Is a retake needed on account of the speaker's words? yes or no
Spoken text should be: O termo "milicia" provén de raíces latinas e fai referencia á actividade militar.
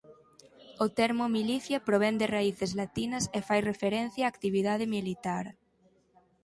no